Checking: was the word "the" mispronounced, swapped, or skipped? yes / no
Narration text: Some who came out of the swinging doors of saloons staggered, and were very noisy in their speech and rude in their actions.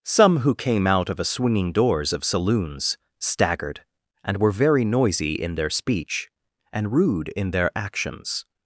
yes